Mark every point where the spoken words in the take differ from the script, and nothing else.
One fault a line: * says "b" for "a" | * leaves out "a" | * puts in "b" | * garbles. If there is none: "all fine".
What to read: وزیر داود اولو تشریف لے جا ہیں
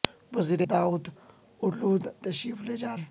all fine